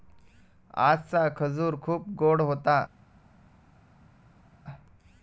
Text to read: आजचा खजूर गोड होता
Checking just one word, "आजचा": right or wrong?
right